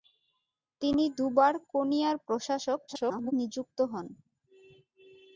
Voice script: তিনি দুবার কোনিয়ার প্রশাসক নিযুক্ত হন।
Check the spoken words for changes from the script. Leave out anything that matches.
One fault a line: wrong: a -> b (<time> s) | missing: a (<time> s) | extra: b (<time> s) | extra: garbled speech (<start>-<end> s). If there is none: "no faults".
extra: garbled speech (2.9-3.3 s)